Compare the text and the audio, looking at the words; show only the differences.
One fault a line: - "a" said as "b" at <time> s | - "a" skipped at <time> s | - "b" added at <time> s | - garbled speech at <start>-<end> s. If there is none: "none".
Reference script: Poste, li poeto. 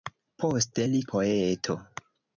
none